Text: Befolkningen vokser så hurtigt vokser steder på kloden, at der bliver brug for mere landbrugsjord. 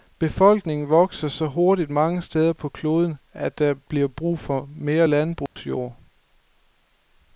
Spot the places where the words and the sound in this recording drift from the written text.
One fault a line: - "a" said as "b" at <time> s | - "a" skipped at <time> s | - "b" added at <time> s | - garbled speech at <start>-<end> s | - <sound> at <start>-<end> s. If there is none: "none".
- "vokser" said as "mange" at 1.9 s
- dropout at 5.5-5.6 s